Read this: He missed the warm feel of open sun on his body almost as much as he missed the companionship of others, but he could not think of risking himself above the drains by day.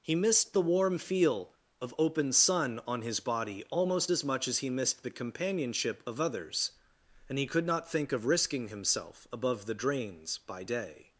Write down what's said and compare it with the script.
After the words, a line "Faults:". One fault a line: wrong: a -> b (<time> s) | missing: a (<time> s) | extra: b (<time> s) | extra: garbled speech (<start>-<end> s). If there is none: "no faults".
He missed the warm feel of open sun on his body almost as much as he missed the companionship of others, and he could not think of risking himself above the drains by day.
Faults:
wrong: but -> and (7.3 s)